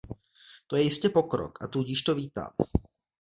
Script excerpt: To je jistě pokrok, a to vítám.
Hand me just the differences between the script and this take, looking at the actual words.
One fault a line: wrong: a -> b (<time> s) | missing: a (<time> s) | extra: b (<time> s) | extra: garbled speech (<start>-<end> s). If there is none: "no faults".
extra: tudíž (1.7 s)